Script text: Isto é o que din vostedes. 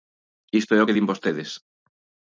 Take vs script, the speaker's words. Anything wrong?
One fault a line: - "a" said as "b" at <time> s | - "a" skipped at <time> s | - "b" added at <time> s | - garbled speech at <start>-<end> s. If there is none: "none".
none